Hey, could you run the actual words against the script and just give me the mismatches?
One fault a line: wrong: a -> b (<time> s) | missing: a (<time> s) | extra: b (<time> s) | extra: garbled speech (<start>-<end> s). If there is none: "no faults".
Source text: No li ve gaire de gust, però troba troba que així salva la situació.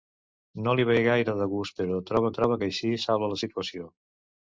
no faults